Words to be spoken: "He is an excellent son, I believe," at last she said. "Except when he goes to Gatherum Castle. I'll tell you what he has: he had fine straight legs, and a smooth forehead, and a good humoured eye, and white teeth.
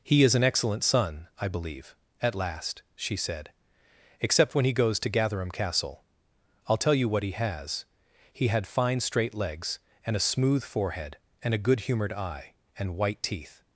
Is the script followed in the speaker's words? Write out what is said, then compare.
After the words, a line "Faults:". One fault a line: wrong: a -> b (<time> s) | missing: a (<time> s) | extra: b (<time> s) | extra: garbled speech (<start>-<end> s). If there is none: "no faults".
"He is an excellent son, I believe," at last she said. "Except when he goes to Gatherum Castle. I'll tell you what he has: he had fine straight legs, and a smooth forehead, and a good humoured eye, and white teeth.
Faults:
no faults